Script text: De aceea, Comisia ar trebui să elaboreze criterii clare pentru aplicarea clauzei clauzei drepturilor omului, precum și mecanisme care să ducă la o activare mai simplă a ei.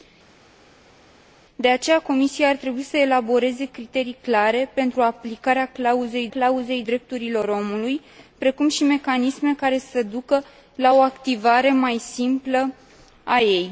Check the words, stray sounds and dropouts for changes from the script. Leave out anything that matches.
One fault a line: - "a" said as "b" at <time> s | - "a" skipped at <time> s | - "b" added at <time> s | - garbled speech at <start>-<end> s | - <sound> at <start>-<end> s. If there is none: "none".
none